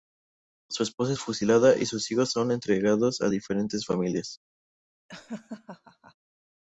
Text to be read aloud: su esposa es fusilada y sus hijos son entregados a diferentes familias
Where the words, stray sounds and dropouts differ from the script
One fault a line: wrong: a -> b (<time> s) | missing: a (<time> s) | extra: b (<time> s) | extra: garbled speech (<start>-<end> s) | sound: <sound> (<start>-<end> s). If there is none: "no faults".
sound: laugh (5.1-6.1 s)